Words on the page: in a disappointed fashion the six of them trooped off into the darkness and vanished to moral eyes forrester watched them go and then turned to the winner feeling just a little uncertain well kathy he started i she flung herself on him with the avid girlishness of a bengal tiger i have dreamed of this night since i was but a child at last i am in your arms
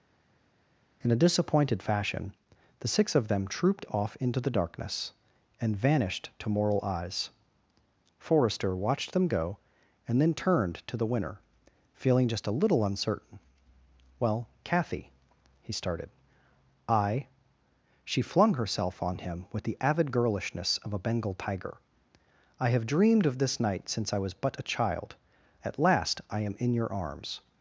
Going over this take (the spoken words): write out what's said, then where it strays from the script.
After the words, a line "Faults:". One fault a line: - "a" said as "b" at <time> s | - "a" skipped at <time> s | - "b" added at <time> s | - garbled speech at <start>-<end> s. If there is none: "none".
in a disappointed fashion the six of them trooped off into the darkness and vanished to moral eyes forrester watched them go and then turned to the winner feeling just a little uncertain well kathy he started i she flung herself on him with the avid girlishness of a bengal tiger i have dreamed of this night since i was but a child at last i am in your arms
Faults:
none